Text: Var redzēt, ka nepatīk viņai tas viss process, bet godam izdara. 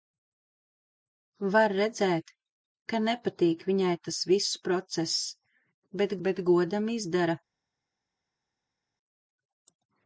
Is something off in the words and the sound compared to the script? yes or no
yes